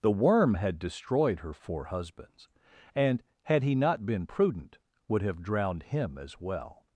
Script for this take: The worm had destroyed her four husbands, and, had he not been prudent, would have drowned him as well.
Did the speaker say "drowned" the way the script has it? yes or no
yes